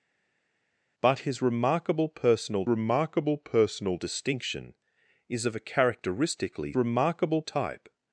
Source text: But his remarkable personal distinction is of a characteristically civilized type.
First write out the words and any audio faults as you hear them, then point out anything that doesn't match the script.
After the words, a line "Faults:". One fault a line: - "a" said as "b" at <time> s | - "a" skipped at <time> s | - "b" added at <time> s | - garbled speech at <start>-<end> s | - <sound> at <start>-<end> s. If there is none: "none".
But his remarkable personal remarkable personal distinction is of a characteristically remarkable type.
Faults:
- "remarkable personal" added at 2.7 s
- "civilized" said as "remarkable" at 6.8 s